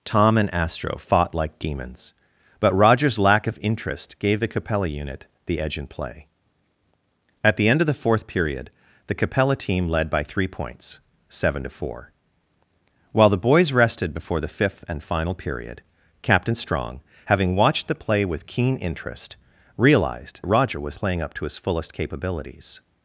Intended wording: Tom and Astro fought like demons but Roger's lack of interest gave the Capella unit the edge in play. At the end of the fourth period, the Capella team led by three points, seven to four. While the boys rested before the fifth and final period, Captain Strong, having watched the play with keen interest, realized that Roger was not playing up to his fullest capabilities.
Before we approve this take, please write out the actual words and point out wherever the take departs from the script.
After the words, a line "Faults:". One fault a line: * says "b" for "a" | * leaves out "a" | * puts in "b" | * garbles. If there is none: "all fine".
Tom and Astro fought like demons but Roger's lack of interest gave the Capella unit the edge in play. At the end of the fourth period, the Capella team led by three points, seven to four. While the boys rested before the fifth and final period, Captain Strong, having watched the play with keen interest, realized Roger was playing up to his fullest capabilities.
Faults:
* leaves out "that"
* leaves out "not"